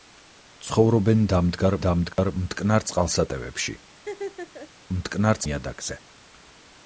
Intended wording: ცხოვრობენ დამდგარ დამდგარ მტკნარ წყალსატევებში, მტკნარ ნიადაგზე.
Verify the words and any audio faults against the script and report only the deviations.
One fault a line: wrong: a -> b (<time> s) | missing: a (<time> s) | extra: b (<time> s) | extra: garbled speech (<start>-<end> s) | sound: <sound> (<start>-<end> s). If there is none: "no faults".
sound: dropout (2.1-2.2 s)
sound: laugh (4.0-4.7 s)